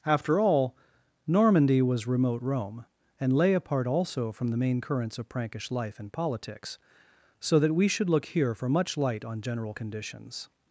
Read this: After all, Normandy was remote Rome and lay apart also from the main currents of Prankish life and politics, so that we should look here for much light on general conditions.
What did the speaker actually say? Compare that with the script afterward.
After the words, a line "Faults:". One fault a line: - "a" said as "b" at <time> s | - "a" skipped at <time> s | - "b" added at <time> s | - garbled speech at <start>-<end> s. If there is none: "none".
After all, Normandy was remote Rome and lay apart also from the main currents of Prankish life and politics, so that we should look here for much light on general conditions.
Faults:
none